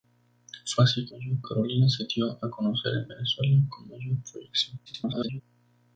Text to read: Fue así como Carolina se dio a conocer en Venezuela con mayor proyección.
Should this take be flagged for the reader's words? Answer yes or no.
yes